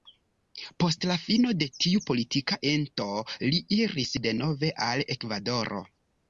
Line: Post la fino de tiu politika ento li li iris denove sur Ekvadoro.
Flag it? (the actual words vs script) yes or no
yes